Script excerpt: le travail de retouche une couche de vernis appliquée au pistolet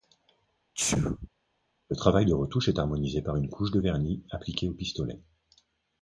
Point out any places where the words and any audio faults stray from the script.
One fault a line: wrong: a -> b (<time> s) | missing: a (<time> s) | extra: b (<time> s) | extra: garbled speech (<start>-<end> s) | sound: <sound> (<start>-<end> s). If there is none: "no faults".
sound: sneeze (0.7-1.3 s)
extra: est harmonisé par (2.7 s)